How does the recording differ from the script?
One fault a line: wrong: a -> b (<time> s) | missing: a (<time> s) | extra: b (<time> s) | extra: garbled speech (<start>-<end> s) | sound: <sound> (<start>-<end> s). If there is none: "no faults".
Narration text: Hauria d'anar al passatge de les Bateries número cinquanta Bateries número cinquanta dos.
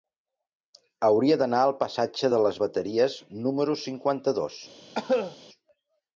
missing: Bateries número cinquanta (4.4 s)
sound: cough (4.9-5.4 s)